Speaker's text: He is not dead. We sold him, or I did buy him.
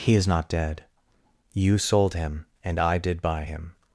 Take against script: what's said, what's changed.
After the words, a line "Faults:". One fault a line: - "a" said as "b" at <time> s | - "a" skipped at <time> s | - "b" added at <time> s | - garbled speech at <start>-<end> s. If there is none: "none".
He is not dead. You sold him, and I did buy him.
Faults:
- "We" said as "You" at 1.5 s
- "or" said as "and" at 2.6 s